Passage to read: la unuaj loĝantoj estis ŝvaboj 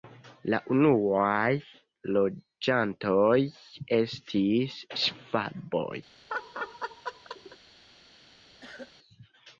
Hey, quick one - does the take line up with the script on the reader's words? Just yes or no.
yes